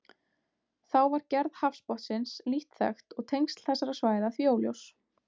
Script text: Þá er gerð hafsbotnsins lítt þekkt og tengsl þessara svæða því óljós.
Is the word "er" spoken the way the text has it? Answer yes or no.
no